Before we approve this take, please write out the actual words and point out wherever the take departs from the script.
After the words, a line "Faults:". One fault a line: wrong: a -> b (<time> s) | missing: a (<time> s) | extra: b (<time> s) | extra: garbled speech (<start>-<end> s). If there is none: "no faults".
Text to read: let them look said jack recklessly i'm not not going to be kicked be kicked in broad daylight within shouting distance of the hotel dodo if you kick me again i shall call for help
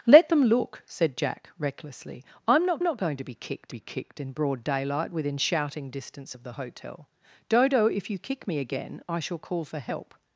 let them look said jack recklessly i'm not not going to be kicked be kicked in broad daylight within shouting distance of the hotel dodo if you kick me again i shall call for help
Faults:
no faults